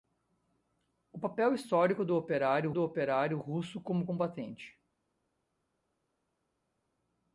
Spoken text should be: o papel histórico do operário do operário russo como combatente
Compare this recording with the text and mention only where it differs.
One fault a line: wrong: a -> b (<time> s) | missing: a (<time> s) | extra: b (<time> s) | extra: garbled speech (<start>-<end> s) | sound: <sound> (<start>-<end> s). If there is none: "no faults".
no faults